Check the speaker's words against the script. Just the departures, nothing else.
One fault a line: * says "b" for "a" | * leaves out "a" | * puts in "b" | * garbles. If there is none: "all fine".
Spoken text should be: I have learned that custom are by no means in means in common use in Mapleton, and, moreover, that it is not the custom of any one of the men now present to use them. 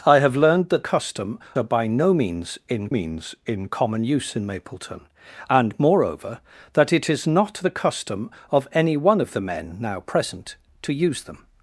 all fine